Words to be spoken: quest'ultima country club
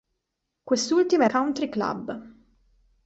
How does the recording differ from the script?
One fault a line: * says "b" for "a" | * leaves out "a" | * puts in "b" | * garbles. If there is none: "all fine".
all fine